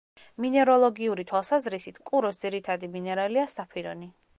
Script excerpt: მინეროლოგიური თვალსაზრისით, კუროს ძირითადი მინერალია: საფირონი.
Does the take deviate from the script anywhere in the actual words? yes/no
no